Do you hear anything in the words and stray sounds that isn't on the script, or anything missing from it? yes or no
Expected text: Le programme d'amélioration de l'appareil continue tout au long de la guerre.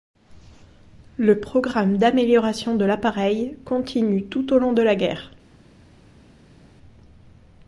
no